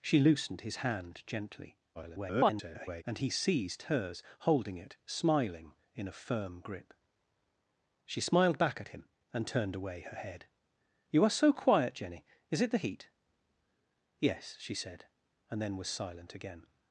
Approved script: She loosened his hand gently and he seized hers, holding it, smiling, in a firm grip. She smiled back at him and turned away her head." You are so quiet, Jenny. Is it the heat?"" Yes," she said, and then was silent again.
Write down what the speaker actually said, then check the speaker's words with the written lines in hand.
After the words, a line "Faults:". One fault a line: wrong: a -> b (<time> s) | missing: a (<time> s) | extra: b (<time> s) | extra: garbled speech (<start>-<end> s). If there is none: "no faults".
She loosened his hand gently [garbled] and he seized hers, holding it, smiling, in a firm grip. She smiled back at him and turned away her head." You are so quiet, Jenny. Is it the heat?"" Yes," she said, and then was silent again.
Faults:
extra: garbled speech (1.9-3.0 s)